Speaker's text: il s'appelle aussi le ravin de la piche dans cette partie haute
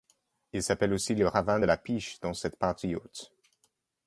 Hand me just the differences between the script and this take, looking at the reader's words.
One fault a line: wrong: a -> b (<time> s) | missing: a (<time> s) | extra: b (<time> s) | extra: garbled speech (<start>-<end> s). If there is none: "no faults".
no faults